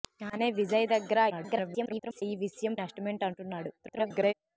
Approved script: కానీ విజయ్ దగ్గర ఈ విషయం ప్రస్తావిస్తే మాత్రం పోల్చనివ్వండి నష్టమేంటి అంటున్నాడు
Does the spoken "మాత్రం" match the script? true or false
false